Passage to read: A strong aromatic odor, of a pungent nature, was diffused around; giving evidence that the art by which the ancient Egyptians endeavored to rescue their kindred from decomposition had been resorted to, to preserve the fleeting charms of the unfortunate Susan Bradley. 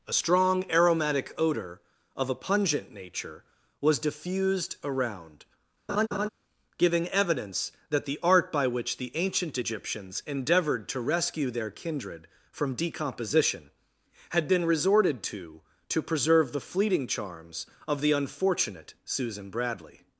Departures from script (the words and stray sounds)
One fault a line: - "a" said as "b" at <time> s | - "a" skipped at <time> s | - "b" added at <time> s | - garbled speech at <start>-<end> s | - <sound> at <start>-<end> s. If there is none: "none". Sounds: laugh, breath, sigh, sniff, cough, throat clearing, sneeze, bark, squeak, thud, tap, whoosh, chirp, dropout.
- laugh at 5.9-6.3 s